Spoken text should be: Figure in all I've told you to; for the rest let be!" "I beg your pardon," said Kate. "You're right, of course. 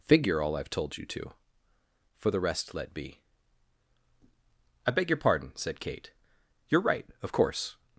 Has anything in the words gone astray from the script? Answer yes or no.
yes